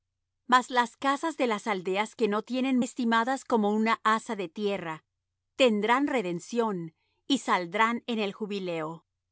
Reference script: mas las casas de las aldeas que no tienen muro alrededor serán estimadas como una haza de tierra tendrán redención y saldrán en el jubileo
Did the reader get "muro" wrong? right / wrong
wrong